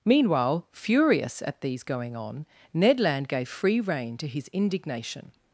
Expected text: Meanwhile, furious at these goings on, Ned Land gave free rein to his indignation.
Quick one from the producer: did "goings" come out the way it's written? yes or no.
no